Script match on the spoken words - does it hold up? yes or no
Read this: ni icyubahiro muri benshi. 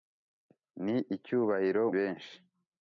no